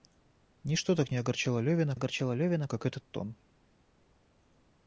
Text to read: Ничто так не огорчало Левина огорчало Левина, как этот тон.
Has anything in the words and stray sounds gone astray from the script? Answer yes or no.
no